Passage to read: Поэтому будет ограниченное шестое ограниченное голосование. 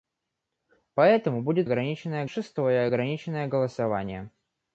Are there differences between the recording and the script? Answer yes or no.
no